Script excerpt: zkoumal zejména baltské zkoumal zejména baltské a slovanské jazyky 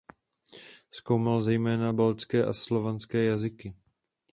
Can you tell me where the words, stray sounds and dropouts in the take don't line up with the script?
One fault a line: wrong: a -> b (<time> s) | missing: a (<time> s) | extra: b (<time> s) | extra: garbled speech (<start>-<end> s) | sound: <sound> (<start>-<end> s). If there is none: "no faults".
missing: zkoumal zejména baltské (2.4 s)